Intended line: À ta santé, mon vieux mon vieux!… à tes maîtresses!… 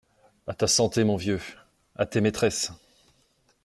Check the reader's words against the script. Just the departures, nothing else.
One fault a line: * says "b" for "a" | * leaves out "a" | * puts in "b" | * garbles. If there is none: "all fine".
* leaves out "mon vieux"